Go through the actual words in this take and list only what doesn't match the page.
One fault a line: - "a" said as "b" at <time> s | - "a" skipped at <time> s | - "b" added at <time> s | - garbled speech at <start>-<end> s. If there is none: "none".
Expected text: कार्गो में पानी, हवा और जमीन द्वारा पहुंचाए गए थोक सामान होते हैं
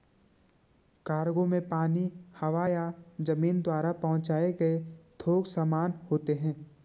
- "और" said as "या" at 2.7 s